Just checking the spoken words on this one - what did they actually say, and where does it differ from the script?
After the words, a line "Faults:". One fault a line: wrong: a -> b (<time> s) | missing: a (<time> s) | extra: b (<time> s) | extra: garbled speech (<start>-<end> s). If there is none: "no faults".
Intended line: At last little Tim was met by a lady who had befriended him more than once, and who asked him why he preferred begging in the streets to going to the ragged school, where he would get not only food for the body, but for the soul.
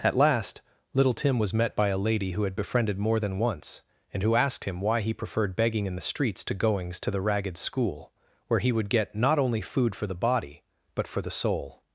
At last little Tim was met by a lady who had befriended more than once, and who asked him why he preferred begging in the streets to goings to the ragged school, where he would get not only food for the body, but for the soul.
Faults:
missing: him (3.0 s)
wrong: going -> goings (6.5 s)